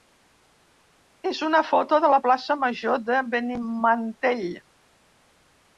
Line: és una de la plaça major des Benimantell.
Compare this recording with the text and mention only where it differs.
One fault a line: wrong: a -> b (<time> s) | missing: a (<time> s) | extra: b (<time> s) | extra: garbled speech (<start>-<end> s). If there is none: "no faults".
extra: foto (1.7 s)
wrong: des -> de (3.1 s)